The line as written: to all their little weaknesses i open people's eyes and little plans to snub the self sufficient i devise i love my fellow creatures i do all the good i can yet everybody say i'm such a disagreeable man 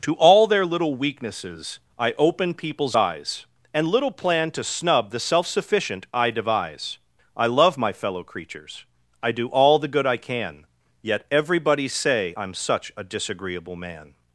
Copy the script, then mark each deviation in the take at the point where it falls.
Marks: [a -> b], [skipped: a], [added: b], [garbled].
to all their little weaknesses i open people's eyes and little [plans -> plan] to snub the self sufficient i devise i love my fellow creatures i do all the good i can yet everybody say i'm such a disagreeable man